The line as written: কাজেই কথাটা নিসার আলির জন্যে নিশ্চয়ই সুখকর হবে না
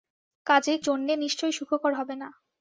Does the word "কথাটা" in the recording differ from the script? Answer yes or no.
yes